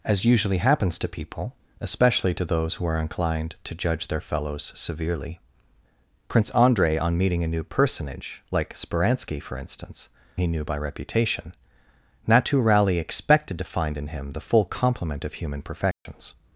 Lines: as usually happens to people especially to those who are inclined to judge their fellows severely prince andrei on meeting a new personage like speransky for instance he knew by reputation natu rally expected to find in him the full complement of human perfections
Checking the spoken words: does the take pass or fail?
pass